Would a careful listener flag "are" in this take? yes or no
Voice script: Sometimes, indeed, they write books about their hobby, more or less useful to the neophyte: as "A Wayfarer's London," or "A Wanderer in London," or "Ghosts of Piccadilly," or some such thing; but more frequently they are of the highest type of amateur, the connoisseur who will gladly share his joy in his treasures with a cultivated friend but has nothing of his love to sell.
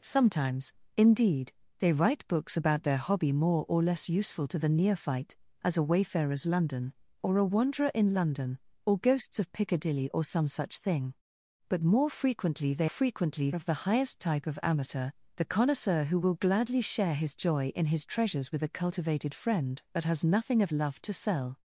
yes